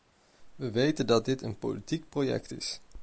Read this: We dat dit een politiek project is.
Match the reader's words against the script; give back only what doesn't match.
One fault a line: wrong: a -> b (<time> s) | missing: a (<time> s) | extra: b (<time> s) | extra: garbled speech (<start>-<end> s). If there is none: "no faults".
extra: weten (0.7 s)